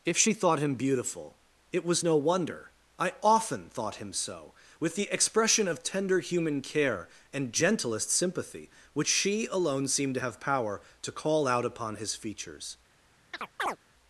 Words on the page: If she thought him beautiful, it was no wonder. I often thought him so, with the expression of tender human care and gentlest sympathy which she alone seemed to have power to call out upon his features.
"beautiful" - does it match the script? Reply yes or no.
yes